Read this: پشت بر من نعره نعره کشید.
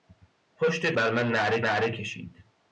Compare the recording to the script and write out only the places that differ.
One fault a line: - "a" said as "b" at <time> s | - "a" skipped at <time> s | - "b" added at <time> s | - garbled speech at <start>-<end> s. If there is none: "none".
none